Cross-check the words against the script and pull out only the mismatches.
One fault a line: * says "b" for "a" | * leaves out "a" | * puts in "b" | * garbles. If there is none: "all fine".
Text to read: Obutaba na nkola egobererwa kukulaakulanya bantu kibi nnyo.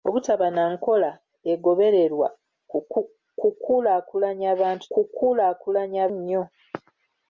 * says "kukulaakulanya" for "kibi"